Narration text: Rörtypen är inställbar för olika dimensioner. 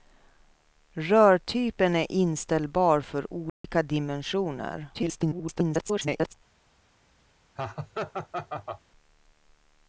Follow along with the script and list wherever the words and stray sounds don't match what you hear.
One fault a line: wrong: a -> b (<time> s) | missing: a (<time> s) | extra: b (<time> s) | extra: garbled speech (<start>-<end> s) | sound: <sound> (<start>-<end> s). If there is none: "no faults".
sound: dropout (3.5-3.6 s)
extra: garbled speech (4.9-6.3 s)
sound: laugh (7.6-8.8 s)